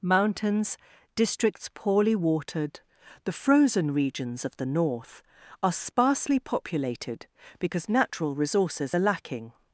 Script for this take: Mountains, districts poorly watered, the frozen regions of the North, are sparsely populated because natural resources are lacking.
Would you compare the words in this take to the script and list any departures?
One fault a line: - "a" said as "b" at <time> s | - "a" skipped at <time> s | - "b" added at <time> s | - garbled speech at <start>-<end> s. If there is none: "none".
none